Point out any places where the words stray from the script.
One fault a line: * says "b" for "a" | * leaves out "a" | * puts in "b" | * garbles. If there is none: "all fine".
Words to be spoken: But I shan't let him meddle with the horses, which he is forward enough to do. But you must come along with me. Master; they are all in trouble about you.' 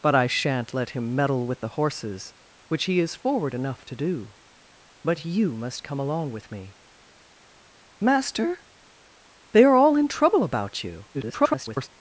* garbles